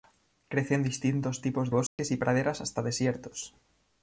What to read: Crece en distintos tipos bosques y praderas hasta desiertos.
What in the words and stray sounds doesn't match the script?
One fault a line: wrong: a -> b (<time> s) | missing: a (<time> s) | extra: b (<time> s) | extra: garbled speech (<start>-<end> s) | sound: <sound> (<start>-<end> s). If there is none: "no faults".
sound: dropout (1.9-2.0 s)